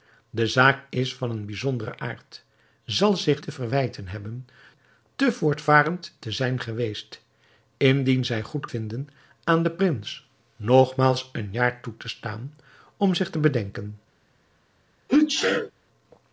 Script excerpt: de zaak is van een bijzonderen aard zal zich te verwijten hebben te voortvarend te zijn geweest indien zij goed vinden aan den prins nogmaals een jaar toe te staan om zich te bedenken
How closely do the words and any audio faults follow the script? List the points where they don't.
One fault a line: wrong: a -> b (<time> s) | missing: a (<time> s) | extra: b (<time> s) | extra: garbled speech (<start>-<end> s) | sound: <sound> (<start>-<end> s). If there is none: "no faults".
sound: sneeze (15.1-15.7 s)